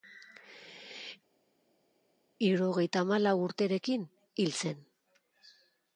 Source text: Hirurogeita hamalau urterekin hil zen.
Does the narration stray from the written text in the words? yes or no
no